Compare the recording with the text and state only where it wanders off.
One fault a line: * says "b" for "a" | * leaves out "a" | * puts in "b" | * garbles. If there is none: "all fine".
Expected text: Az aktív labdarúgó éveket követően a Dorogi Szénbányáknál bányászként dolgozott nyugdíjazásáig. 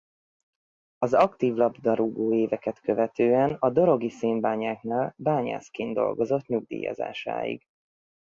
all fine